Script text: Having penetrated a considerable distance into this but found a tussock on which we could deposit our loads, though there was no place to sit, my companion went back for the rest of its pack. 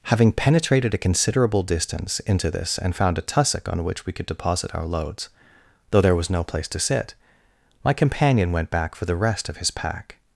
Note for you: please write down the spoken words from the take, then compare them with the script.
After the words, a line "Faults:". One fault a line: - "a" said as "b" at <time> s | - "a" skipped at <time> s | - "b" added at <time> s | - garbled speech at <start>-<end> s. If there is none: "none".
Having penetrated a considerable distance into this and found a tussock on which we could deposit our loads, though there was no place to sit, my companion went back for the rest of his pack.
Faults:
- "but" said as "and" at 2.8 s
- "its" said as "his" at 9.6 s